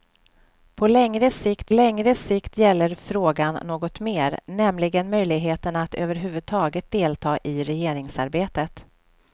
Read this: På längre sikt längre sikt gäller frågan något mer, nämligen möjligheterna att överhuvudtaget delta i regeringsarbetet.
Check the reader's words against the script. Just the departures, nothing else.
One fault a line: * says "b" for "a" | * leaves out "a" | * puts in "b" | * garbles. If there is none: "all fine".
all fine